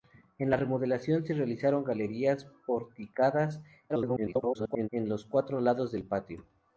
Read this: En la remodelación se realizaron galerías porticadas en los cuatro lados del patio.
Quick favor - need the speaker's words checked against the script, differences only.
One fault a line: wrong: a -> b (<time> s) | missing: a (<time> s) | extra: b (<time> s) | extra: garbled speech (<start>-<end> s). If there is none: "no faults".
extra: garbled speech (3.9-4.9 s)